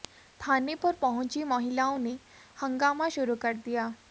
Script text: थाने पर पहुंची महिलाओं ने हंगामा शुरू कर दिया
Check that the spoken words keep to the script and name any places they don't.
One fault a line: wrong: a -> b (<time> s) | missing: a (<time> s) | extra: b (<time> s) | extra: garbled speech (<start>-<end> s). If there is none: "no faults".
no faults